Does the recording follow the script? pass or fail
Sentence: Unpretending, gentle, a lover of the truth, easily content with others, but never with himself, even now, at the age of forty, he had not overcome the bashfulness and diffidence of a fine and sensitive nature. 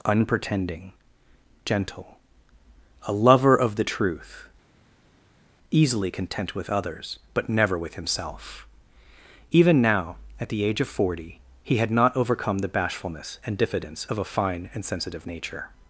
pass